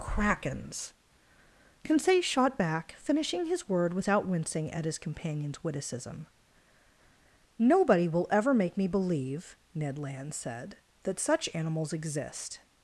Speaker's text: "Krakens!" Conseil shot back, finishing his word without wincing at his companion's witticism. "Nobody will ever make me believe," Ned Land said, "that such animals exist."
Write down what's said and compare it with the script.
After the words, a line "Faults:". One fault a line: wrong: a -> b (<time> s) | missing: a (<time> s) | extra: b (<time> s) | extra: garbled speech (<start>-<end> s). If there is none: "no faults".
"Krakens!" Conseil shot back, finishing his word without wincing at his companion's witticism. "Nobody will ever make me believe," Ned Land said, "that such animals exist."
Faults:
no faults